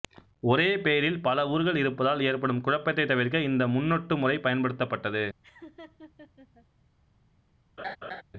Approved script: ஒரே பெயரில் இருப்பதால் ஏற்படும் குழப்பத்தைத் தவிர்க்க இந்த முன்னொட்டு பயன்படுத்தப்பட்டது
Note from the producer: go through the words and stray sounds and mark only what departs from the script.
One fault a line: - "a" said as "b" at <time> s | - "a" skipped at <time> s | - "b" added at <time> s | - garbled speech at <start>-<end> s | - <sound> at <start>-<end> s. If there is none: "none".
- "பல ஊர்கள்" added at 1.2 s
- "முறை" added at 4.2 s
- laugh at 5.4-6.7 s
- laugh at 7.8-8.2 s